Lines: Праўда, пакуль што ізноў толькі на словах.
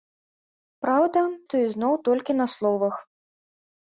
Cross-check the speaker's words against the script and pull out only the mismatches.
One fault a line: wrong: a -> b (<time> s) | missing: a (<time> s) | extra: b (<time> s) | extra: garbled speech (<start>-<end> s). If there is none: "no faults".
missing: пакуль (1.2 s)